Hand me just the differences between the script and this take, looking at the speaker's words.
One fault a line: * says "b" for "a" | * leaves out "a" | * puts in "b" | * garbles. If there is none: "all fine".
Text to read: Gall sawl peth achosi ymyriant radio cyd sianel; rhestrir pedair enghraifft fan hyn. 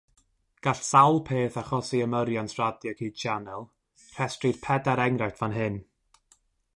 all fine